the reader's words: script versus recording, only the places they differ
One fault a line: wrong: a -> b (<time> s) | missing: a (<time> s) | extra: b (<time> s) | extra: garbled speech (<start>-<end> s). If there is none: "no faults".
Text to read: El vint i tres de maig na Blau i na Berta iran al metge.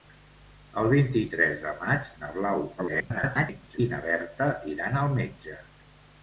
extra: garbled speech (2.8-3.8 s)